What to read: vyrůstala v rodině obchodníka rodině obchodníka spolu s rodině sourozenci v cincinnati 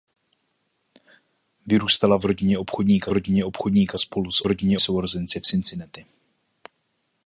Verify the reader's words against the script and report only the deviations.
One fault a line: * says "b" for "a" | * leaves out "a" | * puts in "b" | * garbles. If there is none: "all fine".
all fine